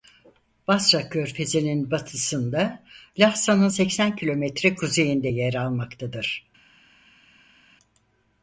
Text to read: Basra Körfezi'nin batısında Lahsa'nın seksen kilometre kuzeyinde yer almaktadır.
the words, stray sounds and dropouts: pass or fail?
pass